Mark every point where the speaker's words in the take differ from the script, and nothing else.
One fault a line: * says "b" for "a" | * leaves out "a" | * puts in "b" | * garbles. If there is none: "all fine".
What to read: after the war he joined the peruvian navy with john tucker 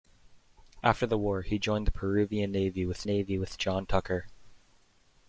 * puts in "navy with"